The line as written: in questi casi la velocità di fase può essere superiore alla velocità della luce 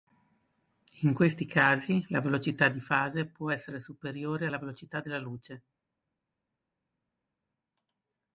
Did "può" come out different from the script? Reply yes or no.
no